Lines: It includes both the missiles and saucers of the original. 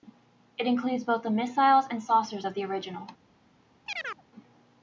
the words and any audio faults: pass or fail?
fail